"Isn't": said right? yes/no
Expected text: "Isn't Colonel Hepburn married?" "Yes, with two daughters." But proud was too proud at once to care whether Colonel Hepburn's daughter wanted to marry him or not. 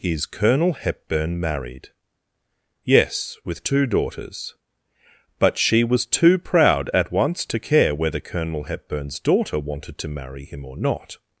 no